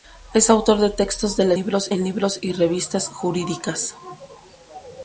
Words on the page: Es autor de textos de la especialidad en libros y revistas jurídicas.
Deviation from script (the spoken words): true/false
true